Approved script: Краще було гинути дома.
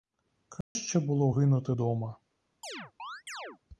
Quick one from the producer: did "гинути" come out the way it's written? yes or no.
yes